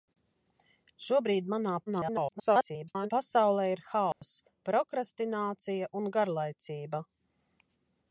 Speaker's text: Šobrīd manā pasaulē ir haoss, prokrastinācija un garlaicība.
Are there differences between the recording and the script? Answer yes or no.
yes